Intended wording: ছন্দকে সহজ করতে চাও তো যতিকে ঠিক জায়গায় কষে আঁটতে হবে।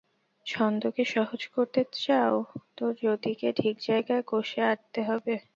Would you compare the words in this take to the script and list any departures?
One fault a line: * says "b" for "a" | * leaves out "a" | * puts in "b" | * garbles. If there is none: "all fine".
all fine